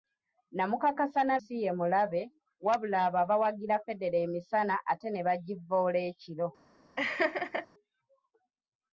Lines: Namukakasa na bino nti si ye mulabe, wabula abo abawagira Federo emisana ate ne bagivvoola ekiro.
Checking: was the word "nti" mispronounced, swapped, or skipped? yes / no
yes